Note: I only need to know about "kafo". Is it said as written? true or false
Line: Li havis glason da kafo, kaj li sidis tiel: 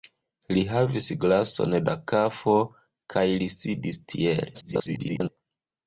true